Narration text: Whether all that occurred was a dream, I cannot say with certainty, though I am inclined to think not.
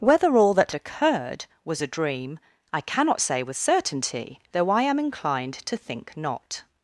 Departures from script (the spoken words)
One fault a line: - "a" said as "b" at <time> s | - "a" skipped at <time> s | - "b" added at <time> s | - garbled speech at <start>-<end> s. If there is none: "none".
none